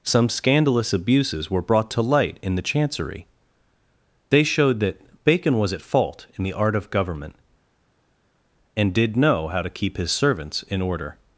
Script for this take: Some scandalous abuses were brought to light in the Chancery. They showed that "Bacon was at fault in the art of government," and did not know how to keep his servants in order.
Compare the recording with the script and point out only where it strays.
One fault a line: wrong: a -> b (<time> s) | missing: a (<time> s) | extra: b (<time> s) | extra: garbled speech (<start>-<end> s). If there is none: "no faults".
missing: not (9.2 s)